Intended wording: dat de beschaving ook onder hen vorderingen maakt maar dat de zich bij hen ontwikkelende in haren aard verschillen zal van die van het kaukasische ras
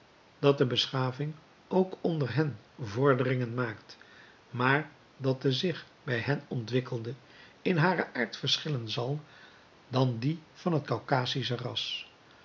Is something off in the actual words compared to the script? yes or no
no